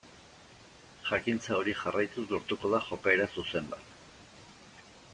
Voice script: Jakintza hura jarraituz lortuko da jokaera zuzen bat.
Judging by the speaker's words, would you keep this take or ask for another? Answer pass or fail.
fail